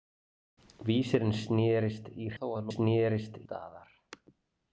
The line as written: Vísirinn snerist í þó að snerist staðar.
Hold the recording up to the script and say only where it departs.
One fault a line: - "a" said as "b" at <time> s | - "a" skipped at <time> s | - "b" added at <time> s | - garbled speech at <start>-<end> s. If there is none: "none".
none